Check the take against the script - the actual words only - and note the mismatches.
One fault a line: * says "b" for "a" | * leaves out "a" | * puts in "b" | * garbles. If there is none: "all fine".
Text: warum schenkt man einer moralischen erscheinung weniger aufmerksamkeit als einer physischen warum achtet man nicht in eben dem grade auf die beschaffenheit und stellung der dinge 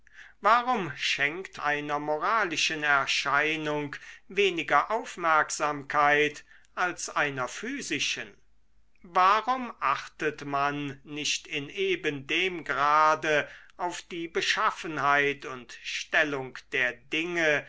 * leaves out "man"